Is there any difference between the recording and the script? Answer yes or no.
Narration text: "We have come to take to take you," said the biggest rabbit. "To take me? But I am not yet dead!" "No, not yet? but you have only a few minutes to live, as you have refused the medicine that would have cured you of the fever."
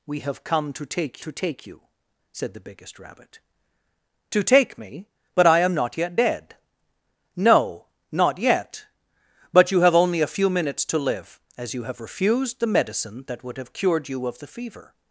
no